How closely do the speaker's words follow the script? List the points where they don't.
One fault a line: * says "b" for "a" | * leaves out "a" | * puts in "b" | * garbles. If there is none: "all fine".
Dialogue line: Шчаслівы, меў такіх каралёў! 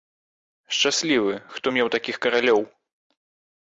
* puts in "хто"